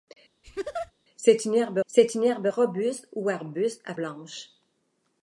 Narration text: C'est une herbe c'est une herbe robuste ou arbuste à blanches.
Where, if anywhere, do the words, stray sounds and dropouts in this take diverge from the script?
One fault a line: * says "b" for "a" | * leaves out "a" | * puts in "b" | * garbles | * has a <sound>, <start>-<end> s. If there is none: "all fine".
* has a laugh, 0.4-0.9 s